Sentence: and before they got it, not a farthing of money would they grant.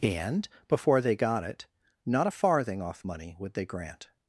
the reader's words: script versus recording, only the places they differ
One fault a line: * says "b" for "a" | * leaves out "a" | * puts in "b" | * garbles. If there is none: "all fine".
* says "off" for "of"